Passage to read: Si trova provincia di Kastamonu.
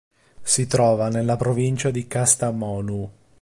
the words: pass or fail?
fail